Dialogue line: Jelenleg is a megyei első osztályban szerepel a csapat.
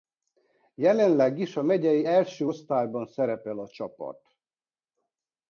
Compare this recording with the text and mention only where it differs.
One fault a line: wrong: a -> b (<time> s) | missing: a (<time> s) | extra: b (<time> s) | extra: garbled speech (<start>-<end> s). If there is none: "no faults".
no faults